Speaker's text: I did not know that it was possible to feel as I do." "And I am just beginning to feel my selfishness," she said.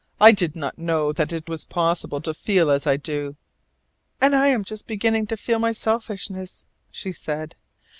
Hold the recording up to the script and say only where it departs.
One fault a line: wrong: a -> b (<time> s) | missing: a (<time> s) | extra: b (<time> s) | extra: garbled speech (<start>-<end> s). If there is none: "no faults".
no faults